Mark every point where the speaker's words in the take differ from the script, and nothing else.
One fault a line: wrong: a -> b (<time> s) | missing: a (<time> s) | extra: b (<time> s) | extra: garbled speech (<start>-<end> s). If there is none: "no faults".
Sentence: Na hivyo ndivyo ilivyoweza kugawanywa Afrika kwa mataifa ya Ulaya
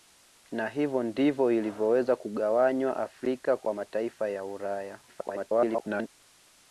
extra: garbled speech (5.1-6.1 s)